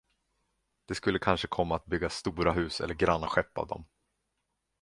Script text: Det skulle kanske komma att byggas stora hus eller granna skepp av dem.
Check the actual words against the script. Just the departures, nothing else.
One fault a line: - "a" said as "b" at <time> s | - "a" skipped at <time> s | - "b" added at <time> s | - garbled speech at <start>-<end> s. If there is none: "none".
none